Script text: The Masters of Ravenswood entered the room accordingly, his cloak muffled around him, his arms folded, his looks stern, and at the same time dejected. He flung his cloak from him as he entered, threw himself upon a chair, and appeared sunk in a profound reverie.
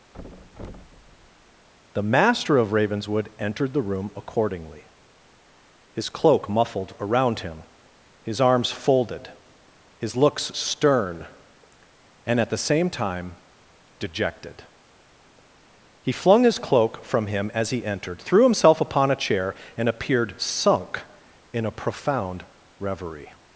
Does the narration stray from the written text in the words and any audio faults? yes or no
yes